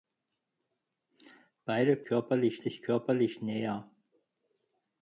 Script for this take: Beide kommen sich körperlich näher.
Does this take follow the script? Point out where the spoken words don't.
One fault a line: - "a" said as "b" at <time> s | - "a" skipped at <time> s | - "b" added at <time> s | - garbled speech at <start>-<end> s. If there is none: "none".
- "kommen" said as "körperlich" at 2.0 s